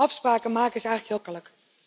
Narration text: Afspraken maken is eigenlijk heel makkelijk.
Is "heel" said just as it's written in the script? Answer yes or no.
no